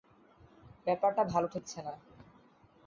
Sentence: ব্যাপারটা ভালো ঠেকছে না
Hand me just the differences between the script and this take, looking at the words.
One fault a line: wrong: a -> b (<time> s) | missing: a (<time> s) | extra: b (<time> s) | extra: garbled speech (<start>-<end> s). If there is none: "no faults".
no faults